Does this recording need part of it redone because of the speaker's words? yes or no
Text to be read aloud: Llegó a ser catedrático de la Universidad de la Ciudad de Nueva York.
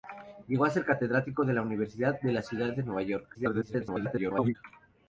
yes